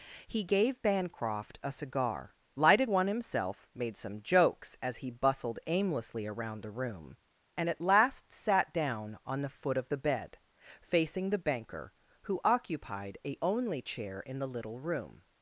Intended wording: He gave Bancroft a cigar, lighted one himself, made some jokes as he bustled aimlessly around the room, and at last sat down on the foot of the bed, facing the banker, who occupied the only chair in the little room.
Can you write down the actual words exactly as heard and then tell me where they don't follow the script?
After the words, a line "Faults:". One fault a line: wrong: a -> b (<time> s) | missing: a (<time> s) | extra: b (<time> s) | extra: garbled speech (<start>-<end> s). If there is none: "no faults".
He gave Bancroft a cigar, lighted one himself, made some jokes as he bustled aimlessly around the room, and at last sat down on the foot of the bed, facing the banker, who occupied a only chair in the little room.
Faults:
wrong: the -> a (13.2 s)